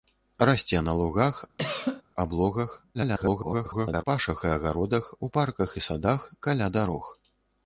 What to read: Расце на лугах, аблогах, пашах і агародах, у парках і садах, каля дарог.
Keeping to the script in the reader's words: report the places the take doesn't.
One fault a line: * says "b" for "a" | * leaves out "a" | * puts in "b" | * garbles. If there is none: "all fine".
* garbles